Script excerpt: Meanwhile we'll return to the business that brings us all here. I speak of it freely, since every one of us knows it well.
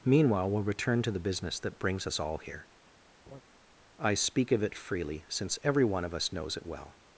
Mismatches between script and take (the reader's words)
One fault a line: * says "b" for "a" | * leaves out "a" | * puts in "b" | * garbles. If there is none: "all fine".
all fine